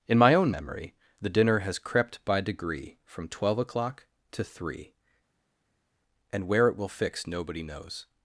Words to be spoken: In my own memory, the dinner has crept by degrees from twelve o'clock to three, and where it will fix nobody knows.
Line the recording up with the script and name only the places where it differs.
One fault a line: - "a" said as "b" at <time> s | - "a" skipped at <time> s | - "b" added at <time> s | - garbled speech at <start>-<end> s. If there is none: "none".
- "degrees" said as "degree" at 2.4 s